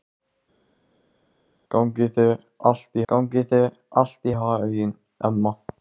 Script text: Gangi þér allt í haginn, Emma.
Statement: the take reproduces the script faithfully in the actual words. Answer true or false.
false